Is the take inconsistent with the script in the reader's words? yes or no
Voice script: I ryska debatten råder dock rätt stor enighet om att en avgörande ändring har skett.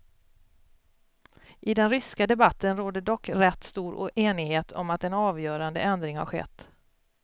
yes